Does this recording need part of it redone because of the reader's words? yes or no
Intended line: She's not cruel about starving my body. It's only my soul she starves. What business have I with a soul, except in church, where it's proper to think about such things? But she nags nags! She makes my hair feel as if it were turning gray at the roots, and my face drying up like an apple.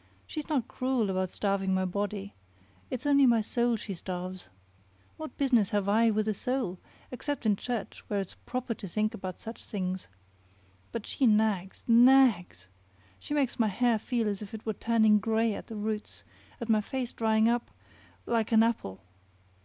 no